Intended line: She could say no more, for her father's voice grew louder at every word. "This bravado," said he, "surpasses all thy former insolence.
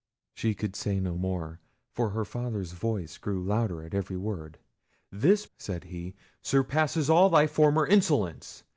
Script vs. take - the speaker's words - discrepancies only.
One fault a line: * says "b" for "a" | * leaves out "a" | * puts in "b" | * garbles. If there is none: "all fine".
* leaves out "bravado"